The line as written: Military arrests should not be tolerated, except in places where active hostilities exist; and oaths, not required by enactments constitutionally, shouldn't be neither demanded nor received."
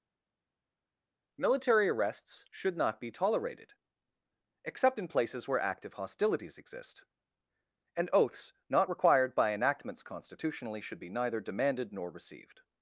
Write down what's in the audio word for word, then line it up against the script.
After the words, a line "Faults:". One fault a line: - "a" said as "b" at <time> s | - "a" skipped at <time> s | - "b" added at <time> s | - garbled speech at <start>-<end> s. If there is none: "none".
Military arrests should not be tolerated, except in places where active hostilities exist; and oaths, not required by enactments constitutionally, should be neither demanded nor received."
Faults:
- "shouldn't" said as "should" at 10.8 s